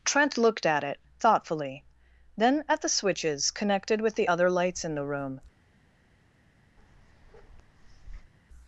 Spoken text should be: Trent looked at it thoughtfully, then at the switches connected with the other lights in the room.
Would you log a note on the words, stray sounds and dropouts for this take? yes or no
yes